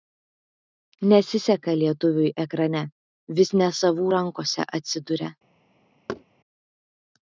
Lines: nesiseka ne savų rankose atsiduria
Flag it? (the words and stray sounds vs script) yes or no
yes